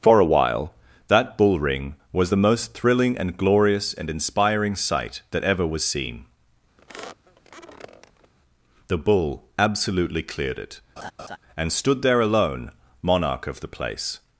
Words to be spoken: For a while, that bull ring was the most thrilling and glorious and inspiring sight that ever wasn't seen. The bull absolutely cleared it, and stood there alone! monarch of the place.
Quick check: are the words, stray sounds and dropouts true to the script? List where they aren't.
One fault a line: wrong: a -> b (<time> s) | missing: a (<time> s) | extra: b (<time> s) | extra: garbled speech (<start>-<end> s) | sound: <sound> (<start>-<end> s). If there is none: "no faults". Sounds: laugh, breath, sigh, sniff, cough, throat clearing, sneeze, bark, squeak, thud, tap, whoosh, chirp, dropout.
wrong: wasn't -> was (5.7 s)
sound: squeak (6.8-8.3 s)
sound: laugh (11.0-11.4 s)